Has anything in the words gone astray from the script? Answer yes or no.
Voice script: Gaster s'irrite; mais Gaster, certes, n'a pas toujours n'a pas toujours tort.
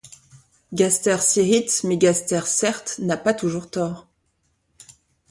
yes